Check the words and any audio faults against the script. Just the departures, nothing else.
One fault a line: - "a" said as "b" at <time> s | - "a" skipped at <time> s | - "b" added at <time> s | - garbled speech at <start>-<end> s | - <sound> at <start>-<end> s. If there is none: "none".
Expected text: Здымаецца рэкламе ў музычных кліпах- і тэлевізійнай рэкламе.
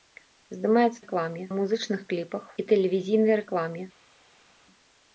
none